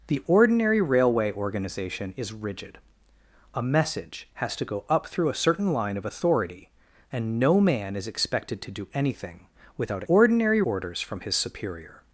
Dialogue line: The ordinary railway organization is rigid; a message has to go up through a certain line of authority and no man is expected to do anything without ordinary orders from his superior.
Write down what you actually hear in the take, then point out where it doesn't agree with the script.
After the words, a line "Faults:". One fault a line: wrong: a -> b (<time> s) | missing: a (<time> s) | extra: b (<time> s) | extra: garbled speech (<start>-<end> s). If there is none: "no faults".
The ordinary railway organization is rigid; a message has to go up through a certain line of authority and no man is expected to do anything without ordinary orders from his superior.
Faults:
no faults